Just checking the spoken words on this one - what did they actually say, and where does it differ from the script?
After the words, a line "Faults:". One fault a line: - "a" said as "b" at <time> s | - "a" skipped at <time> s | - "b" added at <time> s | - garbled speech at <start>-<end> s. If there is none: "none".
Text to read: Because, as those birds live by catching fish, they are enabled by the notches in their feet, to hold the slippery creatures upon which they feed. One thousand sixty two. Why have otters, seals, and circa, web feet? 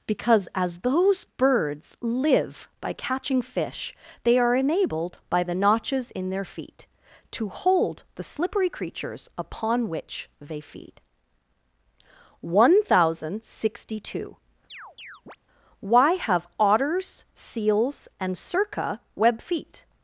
Because, as those birds live by catching fish, they are enabled by the notches in their feet, to hold the slippery creatures upon which they feed. One thousand sixty two. Why have otters, seals, and circa, web feet?
Faults:
none